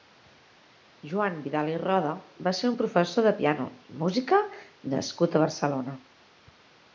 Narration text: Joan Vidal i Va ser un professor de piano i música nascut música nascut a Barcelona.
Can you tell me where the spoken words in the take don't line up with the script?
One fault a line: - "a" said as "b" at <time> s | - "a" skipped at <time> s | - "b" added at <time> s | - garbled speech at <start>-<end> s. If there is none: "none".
- "Roda" added at 1.8 s
- "música nascut" skipped at 5.4 s